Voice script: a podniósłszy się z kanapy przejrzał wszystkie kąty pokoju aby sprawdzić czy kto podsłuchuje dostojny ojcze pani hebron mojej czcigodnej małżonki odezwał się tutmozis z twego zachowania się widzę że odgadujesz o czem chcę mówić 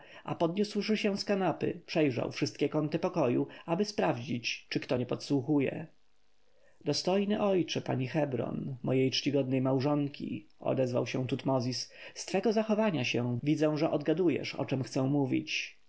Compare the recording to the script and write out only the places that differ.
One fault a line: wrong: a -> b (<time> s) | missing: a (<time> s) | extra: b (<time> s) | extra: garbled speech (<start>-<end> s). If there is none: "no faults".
extra: nie (5.0 s)